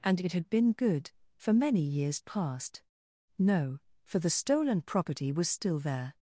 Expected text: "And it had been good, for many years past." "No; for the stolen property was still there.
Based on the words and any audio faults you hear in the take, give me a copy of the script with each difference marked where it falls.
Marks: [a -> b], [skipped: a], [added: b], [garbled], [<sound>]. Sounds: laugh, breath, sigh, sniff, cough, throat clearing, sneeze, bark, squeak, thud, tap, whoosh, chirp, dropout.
"And it had been good, for many years past." "No; for the stolen property was still there.